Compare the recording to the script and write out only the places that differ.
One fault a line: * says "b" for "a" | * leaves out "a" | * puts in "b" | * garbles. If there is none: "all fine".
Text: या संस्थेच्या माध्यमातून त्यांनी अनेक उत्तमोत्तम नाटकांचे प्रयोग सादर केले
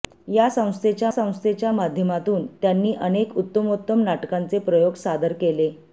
* puts in "संस्थेच्या"